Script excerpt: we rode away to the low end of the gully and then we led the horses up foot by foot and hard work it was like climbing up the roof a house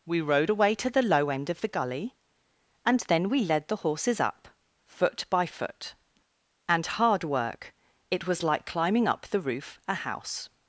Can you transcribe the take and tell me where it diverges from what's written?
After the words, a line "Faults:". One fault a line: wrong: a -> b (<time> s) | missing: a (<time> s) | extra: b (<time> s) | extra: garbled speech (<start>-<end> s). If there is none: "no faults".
we rode away to the low end of the gully and then we led the horses up foot by foot and hard work it was like climbing up the roof a house
Faults:
no faults